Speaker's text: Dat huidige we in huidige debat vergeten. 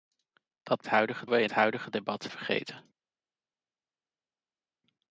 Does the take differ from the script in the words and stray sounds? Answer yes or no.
no